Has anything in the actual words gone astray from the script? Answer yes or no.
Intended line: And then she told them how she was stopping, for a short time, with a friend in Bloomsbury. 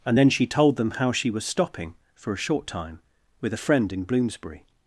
no